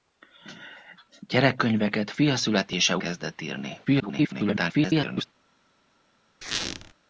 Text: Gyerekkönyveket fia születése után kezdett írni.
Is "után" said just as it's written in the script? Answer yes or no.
no